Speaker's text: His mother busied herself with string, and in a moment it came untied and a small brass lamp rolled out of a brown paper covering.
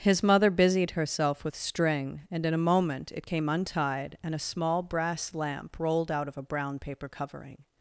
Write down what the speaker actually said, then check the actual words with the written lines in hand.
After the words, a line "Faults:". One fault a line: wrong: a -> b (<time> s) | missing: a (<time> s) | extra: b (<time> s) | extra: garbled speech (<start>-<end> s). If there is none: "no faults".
His mother busied herself with string, and in a moment it came untied and a small brass lamp rolled out of a brown paper covering.
Faults:
no faults